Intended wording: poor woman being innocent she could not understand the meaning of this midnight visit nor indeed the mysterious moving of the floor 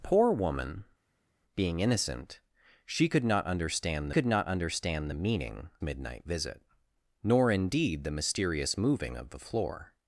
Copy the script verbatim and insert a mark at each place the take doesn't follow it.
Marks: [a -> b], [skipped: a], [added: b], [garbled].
poor woman being innocent she could not understand [added: could not understand] the meaning [skipped: of this] midnight visit nor indeed the mysterious moving of the floor